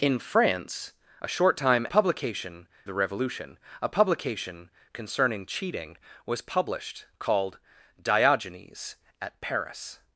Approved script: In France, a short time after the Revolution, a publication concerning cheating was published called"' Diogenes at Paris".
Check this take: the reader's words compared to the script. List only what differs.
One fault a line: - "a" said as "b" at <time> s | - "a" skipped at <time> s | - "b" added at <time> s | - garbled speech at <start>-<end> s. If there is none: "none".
- "after" said as "publication" at 1.9 s